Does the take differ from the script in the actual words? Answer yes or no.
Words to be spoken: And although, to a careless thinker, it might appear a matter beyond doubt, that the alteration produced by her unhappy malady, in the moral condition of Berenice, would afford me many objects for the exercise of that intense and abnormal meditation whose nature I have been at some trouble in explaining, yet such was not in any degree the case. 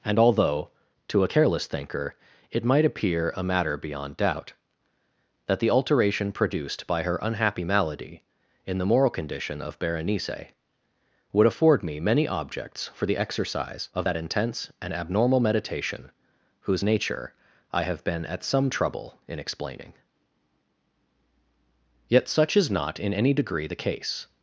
yes